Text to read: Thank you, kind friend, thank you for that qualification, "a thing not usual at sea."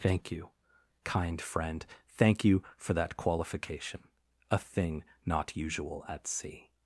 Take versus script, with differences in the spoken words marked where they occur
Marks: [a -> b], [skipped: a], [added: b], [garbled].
Thank you, kind friend, thank you for that qualification, "a thing not usual at sea."